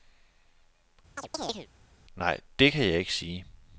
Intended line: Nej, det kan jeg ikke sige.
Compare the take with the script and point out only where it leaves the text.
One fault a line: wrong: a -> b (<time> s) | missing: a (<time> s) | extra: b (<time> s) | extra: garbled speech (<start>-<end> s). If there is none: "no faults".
no faults